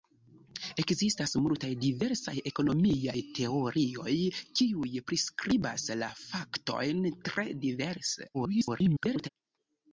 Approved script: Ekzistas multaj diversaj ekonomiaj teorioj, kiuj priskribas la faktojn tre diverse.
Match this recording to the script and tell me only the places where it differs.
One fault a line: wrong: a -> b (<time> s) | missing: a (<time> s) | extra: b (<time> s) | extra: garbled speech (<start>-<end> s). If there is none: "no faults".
extra: garbled speech (8.3-9.3 s)